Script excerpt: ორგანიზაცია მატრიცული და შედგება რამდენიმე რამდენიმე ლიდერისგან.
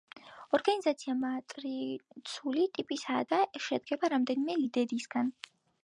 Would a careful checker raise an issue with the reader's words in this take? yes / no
yes